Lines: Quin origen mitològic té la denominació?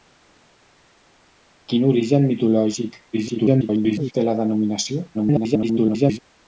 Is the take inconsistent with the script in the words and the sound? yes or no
yes